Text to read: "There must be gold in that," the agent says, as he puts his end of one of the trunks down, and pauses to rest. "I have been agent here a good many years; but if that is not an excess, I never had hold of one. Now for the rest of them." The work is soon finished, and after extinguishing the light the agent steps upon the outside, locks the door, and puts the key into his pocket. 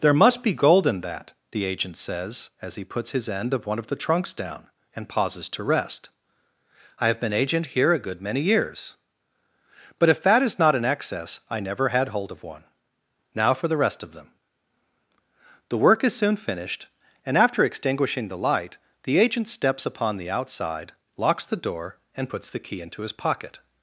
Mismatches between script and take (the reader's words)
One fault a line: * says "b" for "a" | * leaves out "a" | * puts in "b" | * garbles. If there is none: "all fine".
all fine